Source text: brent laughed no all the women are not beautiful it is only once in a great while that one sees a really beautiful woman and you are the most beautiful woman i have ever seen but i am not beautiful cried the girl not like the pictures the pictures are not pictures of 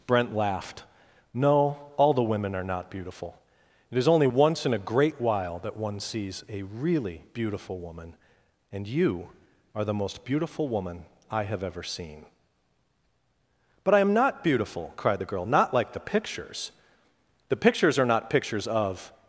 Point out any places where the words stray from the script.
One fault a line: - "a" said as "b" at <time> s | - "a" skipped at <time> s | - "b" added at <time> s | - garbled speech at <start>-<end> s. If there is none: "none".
none